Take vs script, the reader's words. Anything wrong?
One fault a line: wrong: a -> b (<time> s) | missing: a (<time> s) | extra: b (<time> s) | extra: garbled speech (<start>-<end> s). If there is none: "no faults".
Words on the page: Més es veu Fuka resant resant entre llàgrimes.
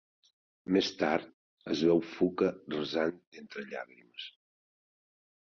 extra: tard (1.0 s)
missing: resant (3.2 s)